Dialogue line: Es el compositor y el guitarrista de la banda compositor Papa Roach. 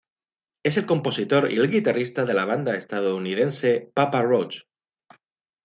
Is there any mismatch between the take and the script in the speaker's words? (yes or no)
yes